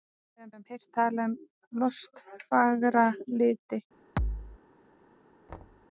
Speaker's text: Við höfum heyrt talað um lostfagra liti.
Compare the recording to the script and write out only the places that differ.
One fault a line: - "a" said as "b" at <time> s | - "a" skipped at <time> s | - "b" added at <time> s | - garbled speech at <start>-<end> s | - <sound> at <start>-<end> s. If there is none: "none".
- "höfum" added at 0.6 s
- thud at 4.2-4.6 s
- thud at 5.5-5.9 s